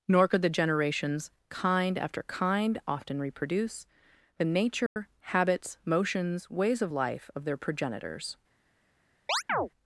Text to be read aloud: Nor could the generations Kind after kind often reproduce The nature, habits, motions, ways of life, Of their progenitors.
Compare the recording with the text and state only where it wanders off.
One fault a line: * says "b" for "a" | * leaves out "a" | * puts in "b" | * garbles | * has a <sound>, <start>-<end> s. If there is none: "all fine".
* has a dropout, 4.9-5.0 s
* has a chirp, 9.3-9.7 s